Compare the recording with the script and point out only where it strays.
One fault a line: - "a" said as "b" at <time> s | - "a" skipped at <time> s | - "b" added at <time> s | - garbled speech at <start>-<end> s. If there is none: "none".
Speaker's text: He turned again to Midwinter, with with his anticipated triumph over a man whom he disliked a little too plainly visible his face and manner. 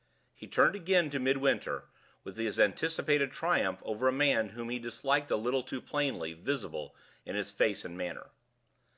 - "with" skipped at 2.4 s
- "in" added at 7.2 s